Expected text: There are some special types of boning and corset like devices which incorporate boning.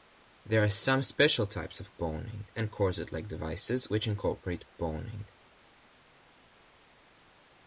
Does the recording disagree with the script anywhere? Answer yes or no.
no